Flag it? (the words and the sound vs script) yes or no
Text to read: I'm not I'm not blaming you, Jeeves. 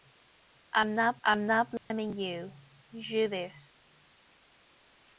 yes